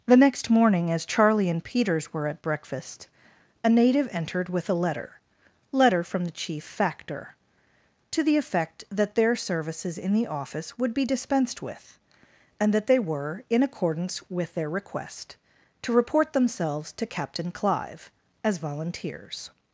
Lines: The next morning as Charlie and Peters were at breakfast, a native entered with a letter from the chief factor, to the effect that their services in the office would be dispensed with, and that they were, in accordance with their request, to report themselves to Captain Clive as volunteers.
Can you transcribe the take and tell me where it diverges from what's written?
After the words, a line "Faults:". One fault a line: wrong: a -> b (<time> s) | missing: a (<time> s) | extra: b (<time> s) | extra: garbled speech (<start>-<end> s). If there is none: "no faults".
The next morning as Charlie and Peters were at breakfast, a native entered with a letter letter from the chief factor, to the effect that their services in the office would be dispensed with, and that they were, in accordance with their request, to report themselves to Captain Clive as volunteers.
Faults:
extra: letter (5.7 s)